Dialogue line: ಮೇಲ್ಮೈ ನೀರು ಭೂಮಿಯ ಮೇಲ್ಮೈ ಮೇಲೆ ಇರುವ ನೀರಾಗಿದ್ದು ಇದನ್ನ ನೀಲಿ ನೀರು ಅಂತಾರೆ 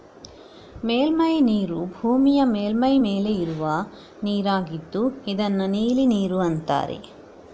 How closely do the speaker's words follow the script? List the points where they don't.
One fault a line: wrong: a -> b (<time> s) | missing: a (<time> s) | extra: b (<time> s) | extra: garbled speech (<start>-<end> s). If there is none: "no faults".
no faults